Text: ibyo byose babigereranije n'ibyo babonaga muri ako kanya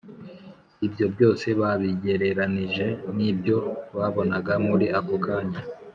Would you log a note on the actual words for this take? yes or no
no